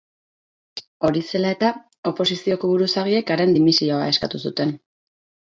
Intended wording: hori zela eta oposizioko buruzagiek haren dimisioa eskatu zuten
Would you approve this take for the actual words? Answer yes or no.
yes